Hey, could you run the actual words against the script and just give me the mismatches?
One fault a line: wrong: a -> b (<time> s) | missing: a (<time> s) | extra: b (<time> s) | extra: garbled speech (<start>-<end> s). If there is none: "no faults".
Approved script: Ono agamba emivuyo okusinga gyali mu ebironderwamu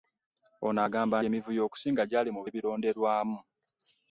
no faults